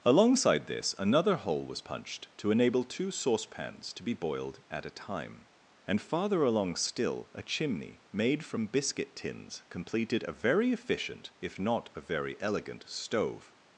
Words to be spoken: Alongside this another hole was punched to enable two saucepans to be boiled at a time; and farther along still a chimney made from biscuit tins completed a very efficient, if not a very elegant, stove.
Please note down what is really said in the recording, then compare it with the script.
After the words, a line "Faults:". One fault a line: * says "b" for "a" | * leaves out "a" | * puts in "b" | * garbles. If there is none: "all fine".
Alongside this another hole was punched to enable two saucepans to be boiled at a time; and farther along still a chimney made from biscuit tins completed a very efficient, if not a very elegant, stove.
Faults:
all fine